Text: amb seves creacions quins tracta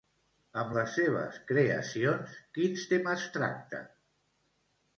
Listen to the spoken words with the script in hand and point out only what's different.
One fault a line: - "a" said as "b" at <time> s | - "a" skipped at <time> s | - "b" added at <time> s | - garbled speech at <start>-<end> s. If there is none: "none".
- "les" added at 0.8 s
- "temes" added at 2.9 s